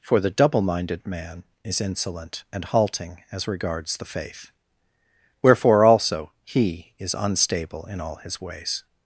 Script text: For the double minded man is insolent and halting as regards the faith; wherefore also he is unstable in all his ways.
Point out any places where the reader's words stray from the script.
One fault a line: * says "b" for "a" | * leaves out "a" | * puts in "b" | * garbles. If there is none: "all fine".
all fine